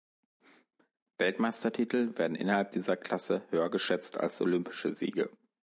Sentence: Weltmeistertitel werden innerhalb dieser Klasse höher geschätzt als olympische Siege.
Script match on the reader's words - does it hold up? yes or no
yes